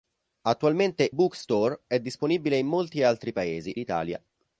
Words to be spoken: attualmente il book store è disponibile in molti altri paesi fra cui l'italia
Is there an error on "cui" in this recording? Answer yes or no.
yes